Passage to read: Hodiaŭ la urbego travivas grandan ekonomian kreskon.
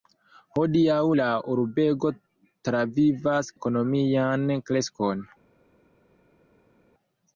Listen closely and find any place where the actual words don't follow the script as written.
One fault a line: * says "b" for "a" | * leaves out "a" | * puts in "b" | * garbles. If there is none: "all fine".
* leaves out "grandan"